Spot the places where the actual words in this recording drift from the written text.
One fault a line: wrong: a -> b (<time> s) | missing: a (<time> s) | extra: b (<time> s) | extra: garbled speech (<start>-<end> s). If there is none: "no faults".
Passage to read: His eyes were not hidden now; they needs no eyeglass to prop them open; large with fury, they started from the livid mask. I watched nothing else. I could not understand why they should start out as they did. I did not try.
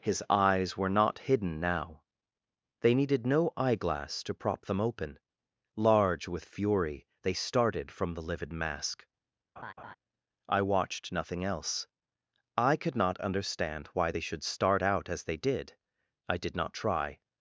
wrong: needs -> needed (3.0 s)